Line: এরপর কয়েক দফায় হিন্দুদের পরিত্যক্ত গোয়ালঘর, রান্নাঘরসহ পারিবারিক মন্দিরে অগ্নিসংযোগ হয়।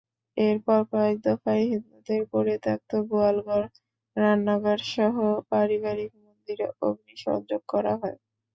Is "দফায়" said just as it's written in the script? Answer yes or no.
yes